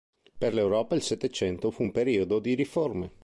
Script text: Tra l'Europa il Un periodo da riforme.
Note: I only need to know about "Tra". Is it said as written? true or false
false